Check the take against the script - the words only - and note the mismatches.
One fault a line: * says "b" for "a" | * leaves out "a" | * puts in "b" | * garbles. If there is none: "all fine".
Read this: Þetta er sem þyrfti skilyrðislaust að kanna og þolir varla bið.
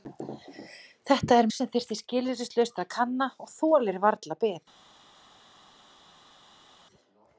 all fine